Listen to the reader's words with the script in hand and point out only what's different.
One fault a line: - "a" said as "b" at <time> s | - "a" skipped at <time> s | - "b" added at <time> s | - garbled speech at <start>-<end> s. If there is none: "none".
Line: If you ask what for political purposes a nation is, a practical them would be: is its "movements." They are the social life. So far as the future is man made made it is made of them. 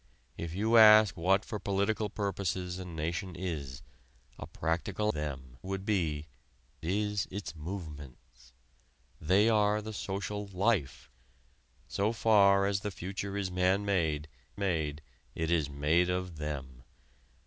none